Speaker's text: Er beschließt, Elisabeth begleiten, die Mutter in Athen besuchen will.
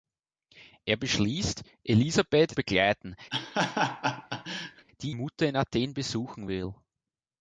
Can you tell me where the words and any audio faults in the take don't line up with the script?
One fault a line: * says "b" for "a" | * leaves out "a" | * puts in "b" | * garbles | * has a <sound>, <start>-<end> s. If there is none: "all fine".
* has a laugh, 3.3-4.9 s